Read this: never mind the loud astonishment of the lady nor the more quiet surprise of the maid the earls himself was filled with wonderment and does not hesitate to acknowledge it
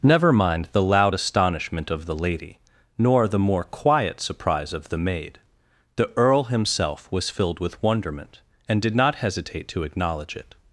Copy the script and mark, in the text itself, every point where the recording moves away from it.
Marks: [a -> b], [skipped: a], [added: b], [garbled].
never mind the loud astonishment of the lady nor the more quiet surprise of the maid the [earls -> earl] himself was filled with wonderment and [does -> did] not hesitate to acknowledge it